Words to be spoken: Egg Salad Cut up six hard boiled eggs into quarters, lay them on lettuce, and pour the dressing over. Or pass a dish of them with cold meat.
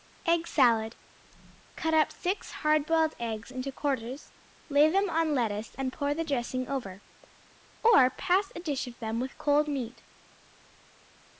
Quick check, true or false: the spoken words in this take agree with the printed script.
true